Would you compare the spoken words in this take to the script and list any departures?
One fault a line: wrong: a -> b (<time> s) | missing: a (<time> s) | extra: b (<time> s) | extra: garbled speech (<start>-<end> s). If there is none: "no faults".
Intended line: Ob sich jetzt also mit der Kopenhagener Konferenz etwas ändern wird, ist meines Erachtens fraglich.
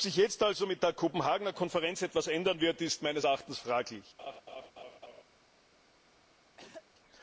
no faults